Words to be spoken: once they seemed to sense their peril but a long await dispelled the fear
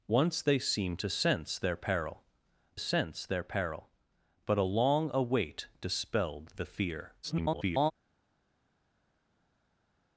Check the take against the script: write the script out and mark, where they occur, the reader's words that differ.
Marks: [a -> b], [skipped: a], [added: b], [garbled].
once they seemed to sense their peril [added: sense their peril] but a long await dispelled the fear [garbled]